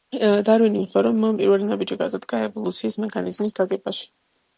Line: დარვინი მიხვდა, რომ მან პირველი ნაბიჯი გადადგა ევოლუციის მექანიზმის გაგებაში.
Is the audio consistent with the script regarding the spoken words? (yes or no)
yes